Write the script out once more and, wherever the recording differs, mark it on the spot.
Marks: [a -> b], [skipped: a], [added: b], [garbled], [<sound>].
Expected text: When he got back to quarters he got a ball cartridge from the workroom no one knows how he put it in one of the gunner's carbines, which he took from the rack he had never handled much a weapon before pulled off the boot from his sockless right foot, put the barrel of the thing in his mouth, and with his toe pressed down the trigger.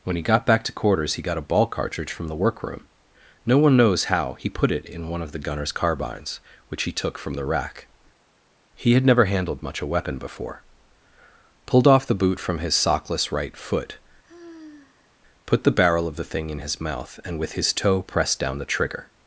When he got back to quarters he got a ball cartridge from the workroom no one knows how he put it in one of the gunner's carbines, which he took from the rack he had never handled much a weapon before pulled off the boot from his sockless right foot, [sigh] put the barrel of the thing in his mouth, and with his toe pressed down the trigger.